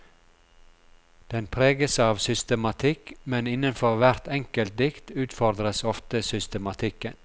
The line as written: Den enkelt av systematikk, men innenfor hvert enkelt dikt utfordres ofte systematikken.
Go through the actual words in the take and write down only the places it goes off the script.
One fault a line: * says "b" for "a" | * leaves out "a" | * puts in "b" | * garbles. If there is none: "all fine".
* says "preges" for "enkelt"